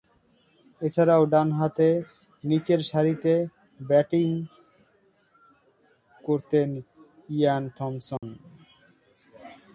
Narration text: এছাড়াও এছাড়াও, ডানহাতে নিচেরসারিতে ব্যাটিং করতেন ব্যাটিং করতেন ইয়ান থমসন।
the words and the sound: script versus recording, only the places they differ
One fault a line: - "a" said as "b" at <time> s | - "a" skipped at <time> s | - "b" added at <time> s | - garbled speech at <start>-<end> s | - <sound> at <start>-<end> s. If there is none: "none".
- "এছাড়াও" skipped at 1.2 s
- "ব্যাটিং করতেন" skipped at 6.7 s
- dropout at 8.2-8.2 s